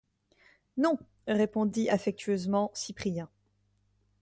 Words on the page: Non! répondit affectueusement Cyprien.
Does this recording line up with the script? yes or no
yes